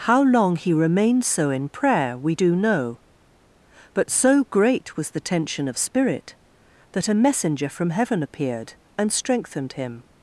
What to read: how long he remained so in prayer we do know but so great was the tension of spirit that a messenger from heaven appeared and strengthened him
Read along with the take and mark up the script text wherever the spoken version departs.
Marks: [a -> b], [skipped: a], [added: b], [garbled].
how long he remained so in prayer we do know but so great was the tension of spirit that a messenger from heaven appeared and strengthened him